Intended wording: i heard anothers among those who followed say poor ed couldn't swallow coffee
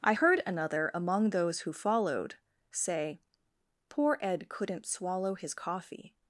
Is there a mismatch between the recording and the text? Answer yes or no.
yes